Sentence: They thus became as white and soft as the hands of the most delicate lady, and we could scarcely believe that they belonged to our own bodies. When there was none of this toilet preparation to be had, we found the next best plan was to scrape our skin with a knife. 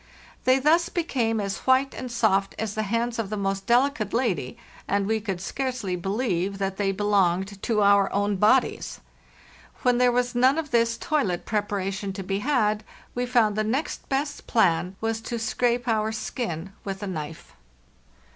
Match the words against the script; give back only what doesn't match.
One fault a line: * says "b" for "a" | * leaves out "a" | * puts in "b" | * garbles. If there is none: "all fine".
all fine